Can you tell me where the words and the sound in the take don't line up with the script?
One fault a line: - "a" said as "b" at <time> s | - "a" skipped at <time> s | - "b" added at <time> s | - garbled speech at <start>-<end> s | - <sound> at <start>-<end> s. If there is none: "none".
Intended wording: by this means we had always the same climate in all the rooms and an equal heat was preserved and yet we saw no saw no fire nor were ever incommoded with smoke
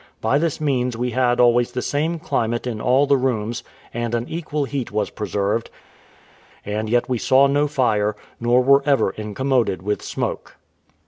- "saw no" skipped at 7.7 s